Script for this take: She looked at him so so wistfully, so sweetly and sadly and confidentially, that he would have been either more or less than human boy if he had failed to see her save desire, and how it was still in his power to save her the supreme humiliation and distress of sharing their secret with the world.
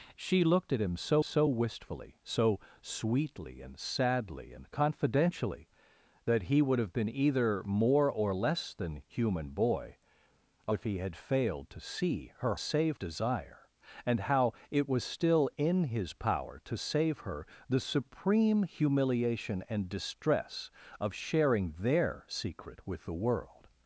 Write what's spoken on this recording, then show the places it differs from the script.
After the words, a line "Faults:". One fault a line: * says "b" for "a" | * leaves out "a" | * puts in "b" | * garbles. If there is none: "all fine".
She looked at him so so wistfully, so sweetly and sadly and confidentially, that he would have been either more or less than human boy if he had failed to see her save desire, and how it was still in his power to save her the supreme humiliation and distress of sharing their secret with the world.
Faults:
all fine